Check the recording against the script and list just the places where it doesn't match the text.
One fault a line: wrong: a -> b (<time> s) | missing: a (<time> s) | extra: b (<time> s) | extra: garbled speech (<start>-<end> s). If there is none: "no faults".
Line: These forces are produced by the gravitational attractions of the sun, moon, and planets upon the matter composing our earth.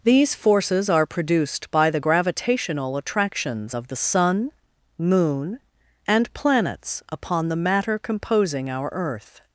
no faults